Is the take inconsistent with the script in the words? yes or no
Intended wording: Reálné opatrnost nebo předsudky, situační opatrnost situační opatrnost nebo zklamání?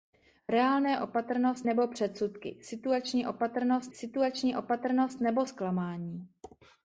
no